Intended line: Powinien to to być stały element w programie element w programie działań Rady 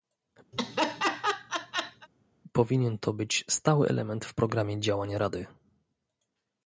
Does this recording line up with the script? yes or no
no